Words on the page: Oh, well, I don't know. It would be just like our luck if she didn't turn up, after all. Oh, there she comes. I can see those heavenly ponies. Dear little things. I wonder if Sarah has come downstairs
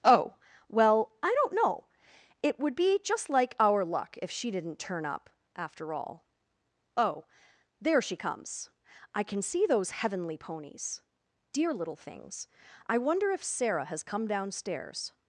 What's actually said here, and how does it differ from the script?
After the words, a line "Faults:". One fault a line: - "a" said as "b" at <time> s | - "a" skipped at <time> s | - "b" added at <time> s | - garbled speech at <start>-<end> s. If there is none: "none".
Oh, well, I don't know. It would be just like our luck if she didn't turn up, after all. Oh, there she comes. I can see those heavenly ponies. Dear little things. I wonder if Sarah has come downstairs
Faults:
none